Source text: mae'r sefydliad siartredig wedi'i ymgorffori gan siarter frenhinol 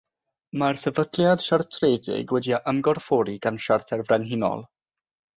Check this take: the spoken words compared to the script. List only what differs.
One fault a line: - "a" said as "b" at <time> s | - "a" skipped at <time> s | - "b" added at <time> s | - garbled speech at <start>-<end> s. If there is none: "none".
none